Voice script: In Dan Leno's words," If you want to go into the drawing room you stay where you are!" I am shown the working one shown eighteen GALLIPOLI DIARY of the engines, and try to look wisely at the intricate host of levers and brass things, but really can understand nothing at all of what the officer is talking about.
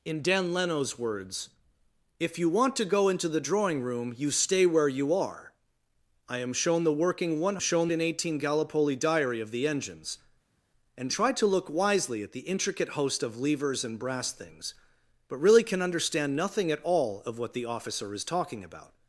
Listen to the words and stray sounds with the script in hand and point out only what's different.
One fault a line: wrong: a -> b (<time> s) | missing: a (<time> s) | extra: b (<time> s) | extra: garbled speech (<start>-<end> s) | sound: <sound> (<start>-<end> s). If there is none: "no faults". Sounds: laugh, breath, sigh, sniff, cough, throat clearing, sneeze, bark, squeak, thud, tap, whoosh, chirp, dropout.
no faults